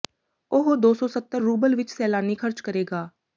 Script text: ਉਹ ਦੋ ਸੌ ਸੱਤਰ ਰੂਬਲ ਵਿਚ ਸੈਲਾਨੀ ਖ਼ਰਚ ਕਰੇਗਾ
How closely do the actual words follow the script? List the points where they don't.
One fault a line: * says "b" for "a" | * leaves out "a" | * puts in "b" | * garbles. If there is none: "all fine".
all fine